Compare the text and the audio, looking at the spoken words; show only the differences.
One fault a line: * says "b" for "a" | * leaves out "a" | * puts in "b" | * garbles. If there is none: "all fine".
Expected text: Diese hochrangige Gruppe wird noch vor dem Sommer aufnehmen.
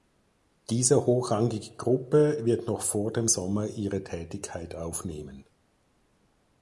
* puts in "ihre Tätigkeit"